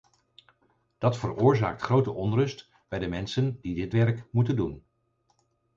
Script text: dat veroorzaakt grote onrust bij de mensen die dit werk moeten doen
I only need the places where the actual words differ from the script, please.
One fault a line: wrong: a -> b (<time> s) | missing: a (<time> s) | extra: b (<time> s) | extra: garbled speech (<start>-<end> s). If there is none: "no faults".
no faults